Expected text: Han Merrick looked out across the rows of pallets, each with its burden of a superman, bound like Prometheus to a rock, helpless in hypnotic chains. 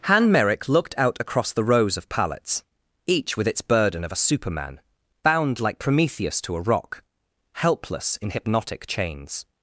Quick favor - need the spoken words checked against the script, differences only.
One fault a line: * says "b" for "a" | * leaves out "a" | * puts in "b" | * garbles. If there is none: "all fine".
all fine